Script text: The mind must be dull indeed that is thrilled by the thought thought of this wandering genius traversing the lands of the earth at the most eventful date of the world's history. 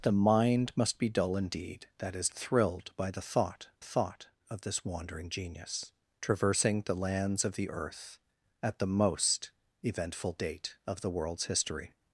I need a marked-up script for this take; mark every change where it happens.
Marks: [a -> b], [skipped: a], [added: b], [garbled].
The mind must be dull indeed that is thrilled by the thought thought of this wandering genius traversing the lands of the earth at the most eventful date of the world's history.